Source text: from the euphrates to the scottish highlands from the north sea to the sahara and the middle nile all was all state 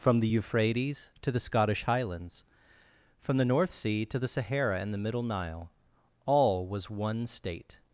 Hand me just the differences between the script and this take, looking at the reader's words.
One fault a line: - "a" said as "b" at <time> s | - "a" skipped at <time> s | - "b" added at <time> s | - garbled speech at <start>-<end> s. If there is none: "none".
- "all" said as "one" at 6.9 s